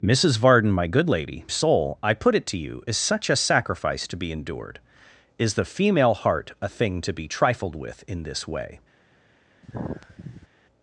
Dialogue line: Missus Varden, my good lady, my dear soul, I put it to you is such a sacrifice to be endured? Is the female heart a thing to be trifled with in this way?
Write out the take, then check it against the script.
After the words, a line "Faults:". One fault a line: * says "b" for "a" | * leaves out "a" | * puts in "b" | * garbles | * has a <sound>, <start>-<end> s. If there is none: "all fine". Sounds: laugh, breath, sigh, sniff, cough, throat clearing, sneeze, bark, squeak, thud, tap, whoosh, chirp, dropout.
Missus Varden, my good lady, soul, I put it to you is such a sacrifice to be endured? Is the female heart a thing to be trifled with in this way?
Faults:
* leaves out "my dear"
* has a sigh, 9.6-10.5 s